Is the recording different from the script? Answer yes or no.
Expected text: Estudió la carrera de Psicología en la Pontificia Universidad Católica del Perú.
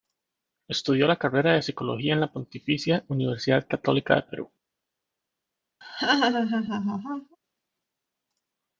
no